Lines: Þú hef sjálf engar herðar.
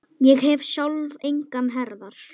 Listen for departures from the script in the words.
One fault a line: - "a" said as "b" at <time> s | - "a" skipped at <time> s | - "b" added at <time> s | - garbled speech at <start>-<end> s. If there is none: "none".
- "Þú" said as "Ég" at 0.3 s